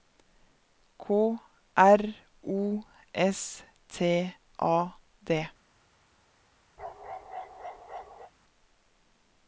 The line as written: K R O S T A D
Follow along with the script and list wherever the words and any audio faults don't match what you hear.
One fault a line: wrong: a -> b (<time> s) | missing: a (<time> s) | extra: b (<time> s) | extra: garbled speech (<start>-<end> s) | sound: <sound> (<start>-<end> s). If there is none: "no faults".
sound: bark (6.8-8.3 s)